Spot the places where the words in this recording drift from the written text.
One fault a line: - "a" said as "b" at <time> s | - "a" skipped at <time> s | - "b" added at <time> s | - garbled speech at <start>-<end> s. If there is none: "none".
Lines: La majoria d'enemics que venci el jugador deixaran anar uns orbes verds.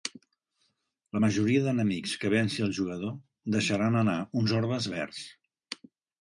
none